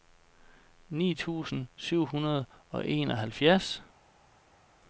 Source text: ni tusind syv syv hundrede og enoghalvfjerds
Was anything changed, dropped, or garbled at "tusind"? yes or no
no